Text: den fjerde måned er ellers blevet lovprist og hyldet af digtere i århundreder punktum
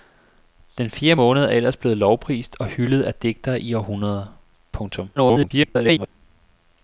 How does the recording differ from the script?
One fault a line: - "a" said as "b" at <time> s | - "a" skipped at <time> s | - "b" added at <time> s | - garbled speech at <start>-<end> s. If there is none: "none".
- garbled speech at 5.2-6.1 s